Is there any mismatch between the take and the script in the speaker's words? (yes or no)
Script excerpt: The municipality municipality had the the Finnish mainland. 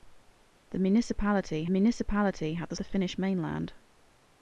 no